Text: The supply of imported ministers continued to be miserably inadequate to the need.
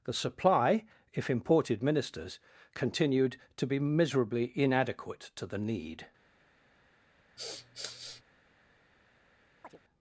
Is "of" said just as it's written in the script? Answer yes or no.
no